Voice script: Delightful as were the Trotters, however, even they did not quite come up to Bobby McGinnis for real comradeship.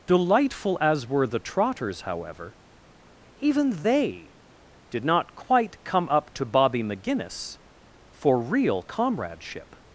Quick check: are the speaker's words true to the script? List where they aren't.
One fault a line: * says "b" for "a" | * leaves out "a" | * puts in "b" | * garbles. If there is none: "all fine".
all fine